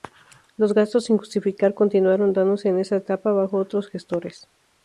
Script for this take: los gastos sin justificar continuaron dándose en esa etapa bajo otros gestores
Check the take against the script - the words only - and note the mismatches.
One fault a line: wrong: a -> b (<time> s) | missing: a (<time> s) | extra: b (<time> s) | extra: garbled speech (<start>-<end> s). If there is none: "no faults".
no faults